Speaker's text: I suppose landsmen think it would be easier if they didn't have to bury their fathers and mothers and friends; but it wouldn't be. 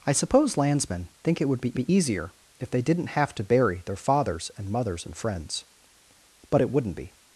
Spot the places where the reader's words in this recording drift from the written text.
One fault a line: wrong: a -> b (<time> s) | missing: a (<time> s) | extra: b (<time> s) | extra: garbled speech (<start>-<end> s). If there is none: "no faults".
extra: be (1.7 s)